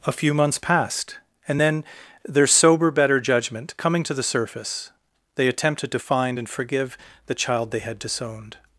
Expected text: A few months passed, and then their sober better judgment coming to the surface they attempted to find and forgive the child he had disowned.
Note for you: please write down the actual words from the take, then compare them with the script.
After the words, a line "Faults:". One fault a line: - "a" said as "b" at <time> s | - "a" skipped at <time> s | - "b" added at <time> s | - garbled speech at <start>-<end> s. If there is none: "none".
A few months passed, and then their sober better judgment coming to the surface they attempted to find and forgive the child they had disowned.
Faults:
- "he" said as "they" at 7.7 s